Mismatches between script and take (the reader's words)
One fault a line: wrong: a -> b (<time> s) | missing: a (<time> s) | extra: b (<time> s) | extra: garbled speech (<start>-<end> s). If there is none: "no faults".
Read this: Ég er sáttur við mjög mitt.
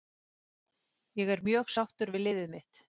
extra: mjög (1.5 s)
wrong: mjög -> liðið (2.3 s)